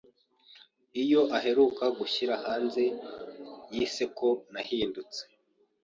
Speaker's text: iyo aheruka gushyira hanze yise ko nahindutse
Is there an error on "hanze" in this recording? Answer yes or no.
no